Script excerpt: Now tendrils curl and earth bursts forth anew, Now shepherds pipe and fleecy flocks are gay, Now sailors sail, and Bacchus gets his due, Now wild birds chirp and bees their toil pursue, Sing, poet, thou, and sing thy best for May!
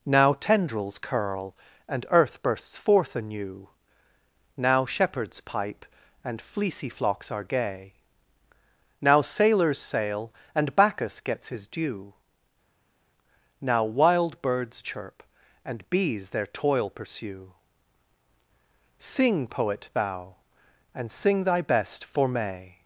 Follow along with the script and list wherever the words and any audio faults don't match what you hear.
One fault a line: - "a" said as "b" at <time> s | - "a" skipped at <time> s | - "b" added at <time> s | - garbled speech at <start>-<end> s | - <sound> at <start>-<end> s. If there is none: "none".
none